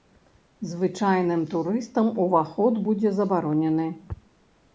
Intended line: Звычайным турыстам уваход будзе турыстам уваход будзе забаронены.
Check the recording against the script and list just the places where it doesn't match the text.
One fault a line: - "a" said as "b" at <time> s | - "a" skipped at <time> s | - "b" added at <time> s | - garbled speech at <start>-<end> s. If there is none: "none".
- "турыстам уваход будзе" skipped at 3.1 s